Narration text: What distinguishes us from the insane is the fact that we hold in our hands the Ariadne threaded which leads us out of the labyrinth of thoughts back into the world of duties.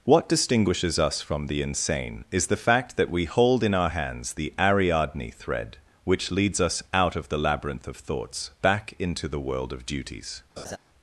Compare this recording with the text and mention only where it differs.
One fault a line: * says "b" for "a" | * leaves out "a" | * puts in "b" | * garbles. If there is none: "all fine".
* says "thread" for "threaded"